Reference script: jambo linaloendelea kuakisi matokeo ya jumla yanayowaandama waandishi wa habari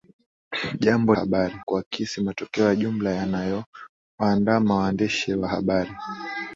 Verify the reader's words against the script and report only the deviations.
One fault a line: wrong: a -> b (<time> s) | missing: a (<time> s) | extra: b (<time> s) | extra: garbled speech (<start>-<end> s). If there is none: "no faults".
wrong: linaloendelea -> habari (1.1 s)